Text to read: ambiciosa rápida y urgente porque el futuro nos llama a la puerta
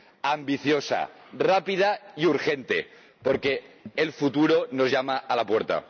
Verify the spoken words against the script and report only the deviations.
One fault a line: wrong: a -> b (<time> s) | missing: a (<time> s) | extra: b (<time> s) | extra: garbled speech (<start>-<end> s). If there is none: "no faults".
no faults